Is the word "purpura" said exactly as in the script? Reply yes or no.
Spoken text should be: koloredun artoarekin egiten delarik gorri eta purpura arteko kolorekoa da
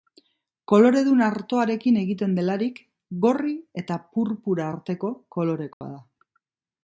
yes